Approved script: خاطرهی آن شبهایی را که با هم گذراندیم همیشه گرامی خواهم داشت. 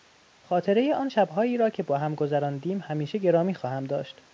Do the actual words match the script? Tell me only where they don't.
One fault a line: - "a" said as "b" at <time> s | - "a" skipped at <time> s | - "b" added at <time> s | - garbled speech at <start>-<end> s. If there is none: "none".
none